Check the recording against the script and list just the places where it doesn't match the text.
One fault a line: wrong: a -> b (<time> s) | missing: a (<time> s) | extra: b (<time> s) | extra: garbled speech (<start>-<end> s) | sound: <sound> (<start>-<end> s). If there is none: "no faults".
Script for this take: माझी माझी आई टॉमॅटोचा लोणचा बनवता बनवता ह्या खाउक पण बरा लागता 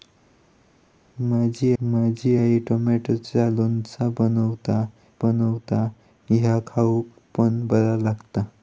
no faults